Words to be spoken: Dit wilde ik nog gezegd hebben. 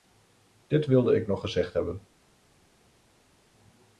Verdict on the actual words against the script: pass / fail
pass